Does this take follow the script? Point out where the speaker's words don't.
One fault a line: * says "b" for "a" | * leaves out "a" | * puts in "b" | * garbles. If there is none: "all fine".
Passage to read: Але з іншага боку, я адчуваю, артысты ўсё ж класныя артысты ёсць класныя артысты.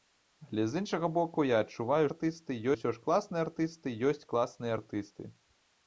all fine